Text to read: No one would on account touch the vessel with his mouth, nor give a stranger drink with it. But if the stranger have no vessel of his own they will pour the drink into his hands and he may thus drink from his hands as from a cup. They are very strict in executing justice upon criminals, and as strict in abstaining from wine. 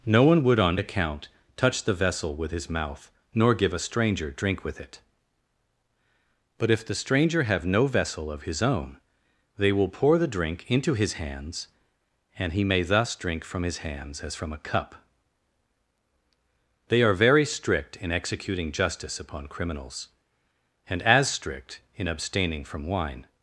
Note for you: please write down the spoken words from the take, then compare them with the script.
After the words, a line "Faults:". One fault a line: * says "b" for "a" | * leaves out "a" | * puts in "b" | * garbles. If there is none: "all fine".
No one would on account touch the vessel with his mouth, nor give a stranger drink with it. But if the stranger have no vessel of his own they will pour the drink into his hands and he may thus drink from his hands as from a cup. They are very strict in executing justice upon criminals, and as strict in abstaining from wine.
Faults:
all fine